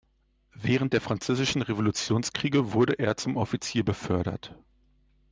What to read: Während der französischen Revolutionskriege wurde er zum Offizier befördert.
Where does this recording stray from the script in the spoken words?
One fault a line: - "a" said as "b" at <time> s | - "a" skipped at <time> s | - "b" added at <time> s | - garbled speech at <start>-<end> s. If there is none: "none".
none